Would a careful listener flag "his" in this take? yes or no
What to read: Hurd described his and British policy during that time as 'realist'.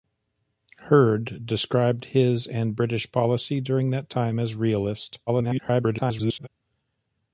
no